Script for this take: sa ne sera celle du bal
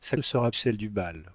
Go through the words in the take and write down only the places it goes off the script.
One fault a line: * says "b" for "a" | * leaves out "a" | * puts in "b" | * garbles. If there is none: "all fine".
all fine